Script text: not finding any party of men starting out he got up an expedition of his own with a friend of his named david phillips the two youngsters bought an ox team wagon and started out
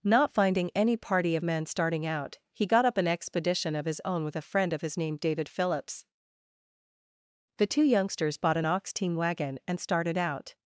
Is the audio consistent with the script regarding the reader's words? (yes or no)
yes